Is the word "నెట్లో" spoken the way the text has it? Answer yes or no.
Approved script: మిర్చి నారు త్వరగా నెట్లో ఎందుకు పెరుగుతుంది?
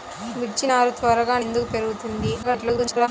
no